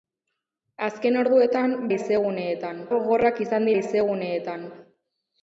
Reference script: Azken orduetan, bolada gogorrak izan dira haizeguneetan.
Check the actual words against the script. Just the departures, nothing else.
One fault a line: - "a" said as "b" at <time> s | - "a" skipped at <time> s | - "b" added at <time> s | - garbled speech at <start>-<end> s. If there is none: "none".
- "bolada" said as "haizeguneetan" at 1.9 s
- "dira" skipped at 3.7 s